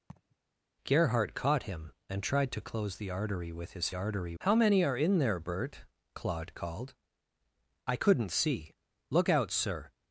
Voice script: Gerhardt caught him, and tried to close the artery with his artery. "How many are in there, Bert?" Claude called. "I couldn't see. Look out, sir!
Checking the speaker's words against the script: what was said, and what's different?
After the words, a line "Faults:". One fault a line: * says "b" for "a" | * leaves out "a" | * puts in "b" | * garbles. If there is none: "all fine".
Gerhardt caught him, and tried to close the artery with his artery. "How many are in there, Bert?" Claude called. "I couldn't see. Look out, sir!
Faults:
all fine